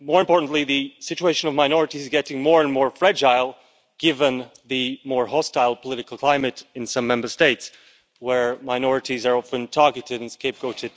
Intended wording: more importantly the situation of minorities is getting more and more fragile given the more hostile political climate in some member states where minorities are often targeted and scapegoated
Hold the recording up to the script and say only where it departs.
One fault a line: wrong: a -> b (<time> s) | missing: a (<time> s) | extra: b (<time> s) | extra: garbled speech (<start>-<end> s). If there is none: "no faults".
no faults